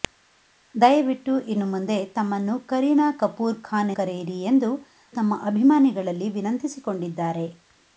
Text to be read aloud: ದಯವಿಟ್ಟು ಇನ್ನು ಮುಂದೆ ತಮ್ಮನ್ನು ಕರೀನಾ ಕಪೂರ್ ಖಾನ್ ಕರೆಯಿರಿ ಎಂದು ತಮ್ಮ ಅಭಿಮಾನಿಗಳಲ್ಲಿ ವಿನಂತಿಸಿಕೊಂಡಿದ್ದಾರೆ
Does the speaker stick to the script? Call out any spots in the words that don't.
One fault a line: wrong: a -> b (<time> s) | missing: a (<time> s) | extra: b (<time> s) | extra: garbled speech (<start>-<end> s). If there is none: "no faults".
no faults